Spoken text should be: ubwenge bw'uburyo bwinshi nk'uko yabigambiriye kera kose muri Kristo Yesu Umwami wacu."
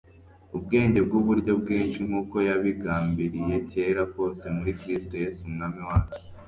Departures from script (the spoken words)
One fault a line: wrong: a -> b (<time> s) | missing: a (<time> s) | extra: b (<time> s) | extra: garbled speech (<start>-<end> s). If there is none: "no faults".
no faults